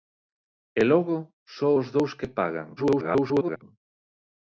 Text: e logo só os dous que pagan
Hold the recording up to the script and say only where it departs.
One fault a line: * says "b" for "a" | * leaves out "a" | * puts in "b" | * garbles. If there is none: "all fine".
* garbles